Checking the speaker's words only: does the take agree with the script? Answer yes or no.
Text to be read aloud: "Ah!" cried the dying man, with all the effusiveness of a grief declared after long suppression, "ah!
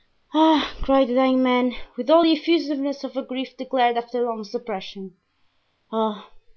yes